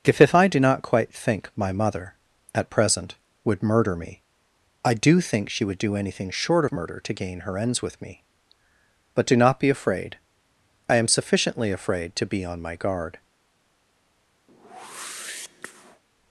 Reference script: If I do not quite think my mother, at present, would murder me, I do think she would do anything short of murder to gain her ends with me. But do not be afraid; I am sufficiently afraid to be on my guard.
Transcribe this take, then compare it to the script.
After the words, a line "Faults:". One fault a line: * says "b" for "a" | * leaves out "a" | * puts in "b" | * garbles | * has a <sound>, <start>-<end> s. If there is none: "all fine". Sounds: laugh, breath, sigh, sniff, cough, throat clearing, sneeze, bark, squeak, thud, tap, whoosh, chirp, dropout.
If if I do not quite think my mother, at present, would murder me, I do think she would do anything short of murder to gain her ends with me. But do not be afraid; I am sufficiently afraid to be on my guard.
Faults:
* puts in "if"
* has a whoosh, 14.5-16.0 s